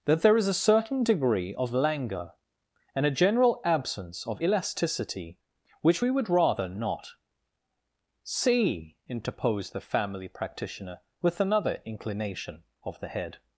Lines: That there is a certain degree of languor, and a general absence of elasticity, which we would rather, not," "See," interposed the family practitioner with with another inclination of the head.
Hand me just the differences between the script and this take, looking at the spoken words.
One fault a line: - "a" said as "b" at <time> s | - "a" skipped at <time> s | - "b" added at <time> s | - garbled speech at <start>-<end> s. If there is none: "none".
- "with" skipped at 11.4 s